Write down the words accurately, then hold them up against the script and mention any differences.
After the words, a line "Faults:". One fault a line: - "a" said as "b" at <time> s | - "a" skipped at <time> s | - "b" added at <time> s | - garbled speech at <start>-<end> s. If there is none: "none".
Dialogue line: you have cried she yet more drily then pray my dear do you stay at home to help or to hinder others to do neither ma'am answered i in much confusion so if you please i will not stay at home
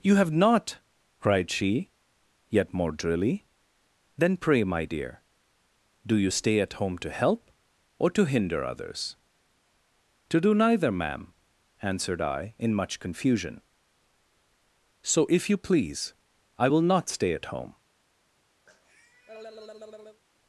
you have not cried she yet more drily then pray my dear do you stay at home to help or to hinder others to do neither ma'am answered i in much confusion so if you please i will not stay at home
Faults:
- "not" added at 0.3 s